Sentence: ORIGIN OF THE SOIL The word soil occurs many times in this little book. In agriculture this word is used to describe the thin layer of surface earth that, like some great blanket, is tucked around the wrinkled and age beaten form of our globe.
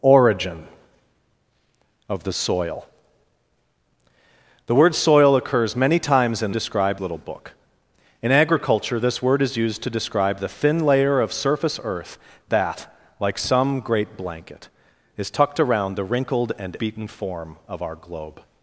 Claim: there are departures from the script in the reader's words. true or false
true